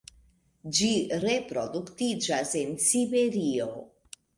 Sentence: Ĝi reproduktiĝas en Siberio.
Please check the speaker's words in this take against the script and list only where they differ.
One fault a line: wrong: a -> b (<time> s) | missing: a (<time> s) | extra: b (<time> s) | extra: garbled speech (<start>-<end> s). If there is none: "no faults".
no faults